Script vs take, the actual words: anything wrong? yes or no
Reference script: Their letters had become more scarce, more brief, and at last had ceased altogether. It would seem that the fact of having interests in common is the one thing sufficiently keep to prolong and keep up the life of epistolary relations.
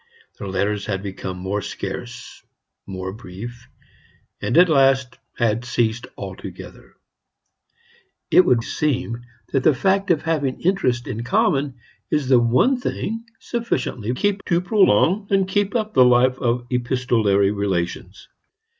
no